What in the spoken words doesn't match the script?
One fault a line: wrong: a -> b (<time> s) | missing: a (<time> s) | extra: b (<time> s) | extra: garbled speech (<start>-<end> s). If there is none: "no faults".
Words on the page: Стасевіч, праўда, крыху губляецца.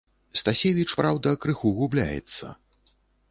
no faults